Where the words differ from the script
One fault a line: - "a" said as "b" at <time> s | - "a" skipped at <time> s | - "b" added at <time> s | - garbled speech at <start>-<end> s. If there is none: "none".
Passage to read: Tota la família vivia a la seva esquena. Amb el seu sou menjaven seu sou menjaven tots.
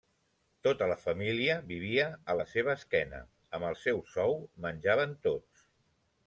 - "seu sou menjaven" skipped at 5.2 s